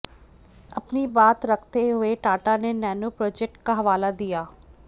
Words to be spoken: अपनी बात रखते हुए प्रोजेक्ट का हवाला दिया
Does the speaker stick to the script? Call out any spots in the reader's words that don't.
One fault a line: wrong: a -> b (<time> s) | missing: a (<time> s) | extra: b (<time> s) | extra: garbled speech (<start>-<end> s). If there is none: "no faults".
extra: टाटा ने नैनो (2.2 s)